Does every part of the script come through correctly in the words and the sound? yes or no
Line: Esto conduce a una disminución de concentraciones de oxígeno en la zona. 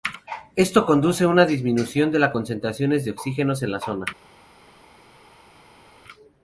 no